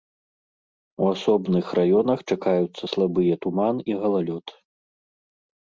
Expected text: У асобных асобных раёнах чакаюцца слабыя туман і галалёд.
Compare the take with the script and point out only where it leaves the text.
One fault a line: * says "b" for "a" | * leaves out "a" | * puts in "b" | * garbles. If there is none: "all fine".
* leaves out "асобных"